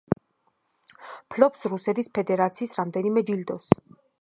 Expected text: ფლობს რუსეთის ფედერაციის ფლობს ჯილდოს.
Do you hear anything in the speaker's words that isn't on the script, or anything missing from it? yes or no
yes